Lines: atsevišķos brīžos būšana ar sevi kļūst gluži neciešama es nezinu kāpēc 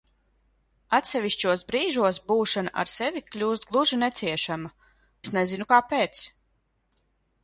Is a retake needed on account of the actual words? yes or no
no